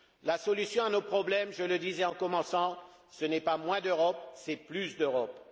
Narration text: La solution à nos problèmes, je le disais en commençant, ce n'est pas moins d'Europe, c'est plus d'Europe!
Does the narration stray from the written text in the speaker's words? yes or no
no